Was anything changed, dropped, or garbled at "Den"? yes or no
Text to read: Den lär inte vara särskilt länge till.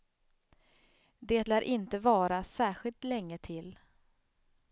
yes